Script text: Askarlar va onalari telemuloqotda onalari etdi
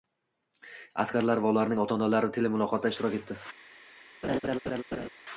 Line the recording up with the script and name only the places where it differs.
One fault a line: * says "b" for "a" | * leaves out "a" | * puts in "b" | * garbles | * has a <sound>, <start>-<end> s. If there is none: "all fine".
* puts in "ularning ota"
* says "ishtirok" for "onalari"
* has a laugh, 4.2-5.1 s